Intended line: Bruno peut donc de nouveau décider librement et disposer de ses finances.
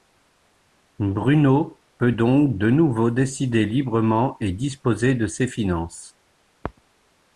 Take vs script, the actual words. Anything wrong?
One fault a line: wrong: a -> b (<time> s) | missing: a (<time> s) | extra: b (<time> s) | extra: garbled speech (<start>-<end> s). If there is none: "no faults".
no faults